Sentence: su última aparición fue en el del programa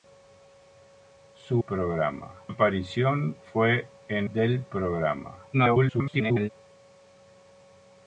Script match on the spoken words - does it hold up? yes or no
no